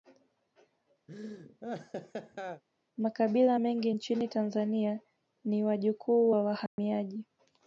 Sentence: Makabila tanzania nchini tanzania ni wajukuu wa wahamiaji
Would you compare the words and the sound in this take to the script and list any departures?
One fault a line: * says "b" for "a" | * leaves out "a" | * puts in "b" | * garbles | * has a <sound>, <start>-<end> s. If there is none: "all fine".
* has a laugh, 1.1-2.6 s
* says "mengi" for "tanzania"
* has a dropout, 6.7-6.8 s